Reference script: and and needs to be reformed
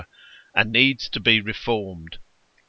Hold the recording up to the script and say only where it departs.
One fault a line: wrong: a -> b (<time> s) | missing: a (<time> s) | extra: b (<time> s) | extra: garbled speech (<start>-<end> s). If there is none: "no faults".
missing: and (0.8 s)